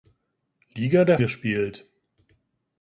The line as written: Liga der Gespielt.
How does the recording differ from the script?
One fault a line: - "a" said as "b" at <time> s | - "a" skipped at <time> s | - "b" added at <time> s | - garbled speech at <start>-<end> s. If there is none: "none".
none